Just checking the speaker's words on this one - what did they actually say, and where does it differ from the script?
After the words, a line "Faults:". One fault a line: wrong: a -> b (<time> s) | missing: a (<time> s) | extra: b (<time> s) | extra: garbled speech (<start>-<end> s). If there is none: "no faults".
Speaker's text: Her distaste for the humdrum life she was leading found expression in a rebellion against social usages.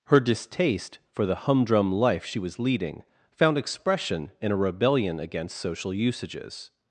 Her distaste for the humdrum life she was leading found expression in a rebellion against social usages.
Faults:
no faults